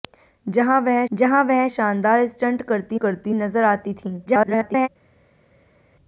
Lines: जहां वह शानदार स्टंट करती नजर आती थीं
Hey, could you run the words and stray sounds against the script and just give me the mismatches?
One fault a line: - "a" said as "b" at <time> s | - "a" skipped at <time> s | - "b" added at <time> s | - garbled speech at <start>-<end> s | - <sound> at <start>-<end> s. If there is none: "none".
- "जहां वह" added at 1.1 s
- "करती" added at 2.9 s
- garbled speech at 4.3-4.9 s